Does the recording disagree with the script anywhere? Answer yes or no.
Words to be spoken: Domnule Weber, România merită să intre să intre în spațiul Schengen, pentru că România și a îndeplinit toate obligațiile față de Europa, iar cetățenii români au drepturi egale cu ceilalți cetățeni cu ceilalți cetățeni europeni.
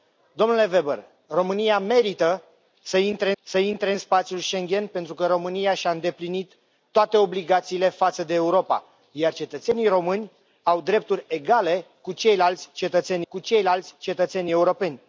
no